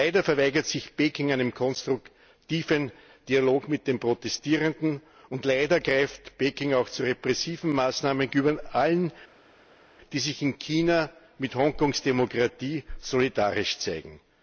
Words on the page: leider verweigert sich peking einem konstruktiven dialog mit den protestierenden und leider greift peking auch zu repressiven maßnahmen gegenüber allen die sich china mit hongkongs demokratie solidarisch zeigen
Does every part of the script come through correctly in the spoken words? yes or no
no